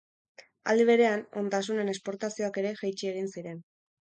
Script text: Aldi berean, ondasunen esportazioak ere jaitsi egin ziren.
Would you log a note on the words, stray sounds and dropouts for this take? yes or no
no